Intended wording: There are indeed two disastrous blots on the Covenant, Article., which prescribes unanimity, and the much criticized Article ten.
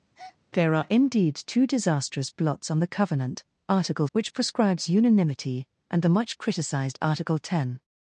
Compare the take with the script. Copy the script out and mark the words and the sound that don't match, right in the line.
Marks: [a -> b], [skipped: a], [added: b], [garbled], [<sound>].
[breath] There are indeed two disastrous blots on the Covenant, Article., which prescribes unanimity, and the much criticized Article ten.